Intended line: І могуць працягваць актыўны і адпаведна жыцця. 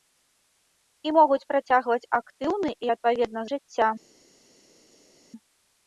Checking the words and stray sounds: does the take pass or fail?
pass